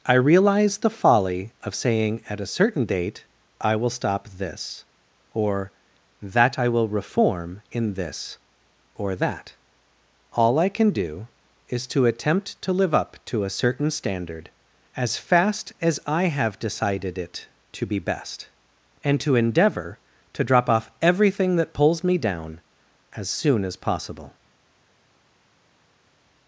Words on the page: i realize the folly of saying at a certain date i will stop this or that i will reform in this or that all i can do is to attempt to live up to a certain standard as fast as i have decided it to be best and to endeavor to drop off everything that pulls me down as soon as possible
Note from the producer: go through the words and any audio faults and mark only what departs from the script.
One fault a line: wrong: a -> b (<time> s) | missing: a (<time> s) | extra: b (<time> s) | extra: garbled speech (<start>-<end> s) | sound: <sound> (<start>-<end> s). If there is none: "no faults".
no faults